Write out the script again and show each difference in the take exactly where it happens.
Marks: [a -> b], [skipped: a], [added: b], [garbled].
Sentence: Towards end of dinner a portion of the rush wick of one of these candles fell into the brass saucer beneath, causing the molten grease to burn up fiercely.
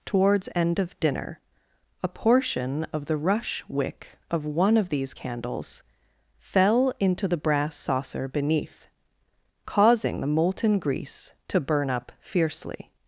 Towards end of dinner a portion of the rush wick of one of these candles fell into the brass saucer beneath, causing the molten grease to burn up fiercely.